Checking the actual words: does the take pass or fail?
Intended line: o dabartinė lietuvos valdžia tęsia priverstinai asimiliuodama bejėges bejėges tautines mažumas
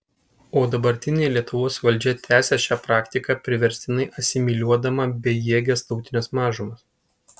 fail